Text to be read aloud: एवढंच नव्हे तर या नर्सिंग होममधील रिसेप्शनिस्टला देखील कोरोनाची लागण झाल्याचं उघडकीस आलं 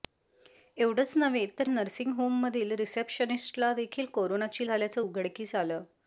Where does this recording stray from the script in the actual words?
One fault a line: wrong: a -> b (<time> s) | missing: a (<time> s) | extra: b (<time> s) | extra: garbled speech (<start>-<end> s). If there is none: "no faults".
missing: या (1.7 s)
missing: लागण (4.7 s)